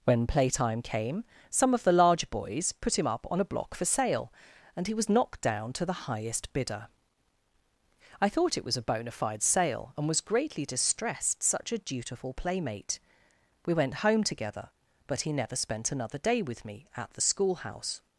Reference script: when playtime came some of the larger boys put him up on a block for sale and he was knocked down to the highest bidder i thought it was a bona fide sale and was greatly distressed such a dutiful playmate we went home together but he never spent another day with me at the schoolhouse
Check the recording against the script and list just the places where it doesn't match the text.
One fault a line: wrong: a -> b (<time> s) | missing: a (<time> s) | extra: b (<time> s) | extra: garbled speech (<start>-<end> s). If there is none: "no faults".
no faults